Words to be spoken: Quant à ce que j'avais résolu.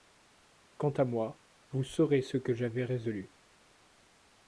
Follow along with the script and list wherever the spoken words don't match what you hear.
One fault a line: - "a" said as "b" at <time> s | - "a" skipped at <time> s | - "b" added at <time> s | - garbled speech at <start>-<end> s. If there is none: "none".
- "moi vous saurez" added at 1.1 s